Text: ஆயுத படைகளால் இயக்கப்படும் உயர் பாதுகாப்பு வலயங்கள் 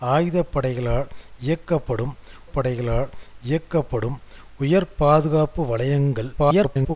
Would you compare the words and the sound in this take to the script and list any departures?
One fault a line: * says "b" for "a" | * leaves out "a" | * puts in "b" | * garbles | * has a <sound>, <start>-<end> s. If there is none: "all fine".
* puts in "படைகளால் இயக்கப்படும்"
* garbles